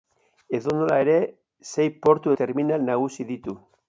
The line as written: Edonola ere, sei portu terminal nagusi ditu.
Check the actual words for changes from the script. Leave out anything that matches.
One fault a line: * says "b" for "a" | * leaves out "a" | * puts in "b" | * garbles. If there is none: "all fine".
all fine